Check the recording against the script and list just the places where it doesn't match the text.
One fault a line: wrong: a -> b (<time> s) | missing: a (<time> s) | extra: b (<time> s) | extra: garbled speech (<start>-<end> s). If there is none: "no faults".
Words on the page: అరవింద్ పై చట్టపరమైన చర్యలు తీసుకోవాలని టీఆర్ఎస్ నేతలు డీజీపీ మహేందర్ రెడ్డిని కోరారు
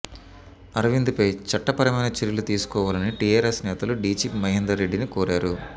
no faults